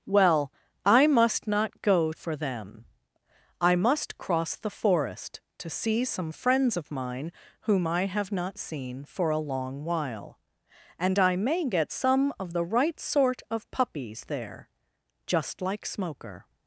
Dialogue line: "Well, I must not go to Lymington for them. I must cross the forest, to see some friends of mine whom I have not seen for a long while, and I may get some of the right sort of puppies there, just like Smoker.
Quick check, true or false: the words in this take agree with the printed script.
false